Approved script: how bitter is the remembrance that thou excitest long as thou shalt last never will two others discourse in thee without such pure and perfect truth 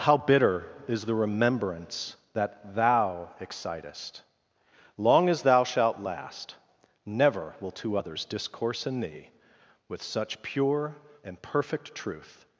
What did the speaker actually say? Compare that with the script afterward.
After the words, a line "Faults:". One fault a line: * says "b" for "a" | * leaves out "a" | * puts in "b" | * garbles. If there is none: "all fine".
how bitter is the remembrance that thou excitest long as thou shalt last never will two others discourse in thee with such pure and perfect truth
Faults:
* says "with" for "without"